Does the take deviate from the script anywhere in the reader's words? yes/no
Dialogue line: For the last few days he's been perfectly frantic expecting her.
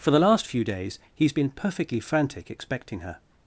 no